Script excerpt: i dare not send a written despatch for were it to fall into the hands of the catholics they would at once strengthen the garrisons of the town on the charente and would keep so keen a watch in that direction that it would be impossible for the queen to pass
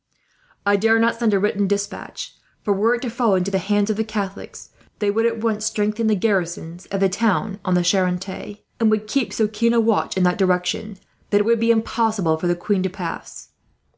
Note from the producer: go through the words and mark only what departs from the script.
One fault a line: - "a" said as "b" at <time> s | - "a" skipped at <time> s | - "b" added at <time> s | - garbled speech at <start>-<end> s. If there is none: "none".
none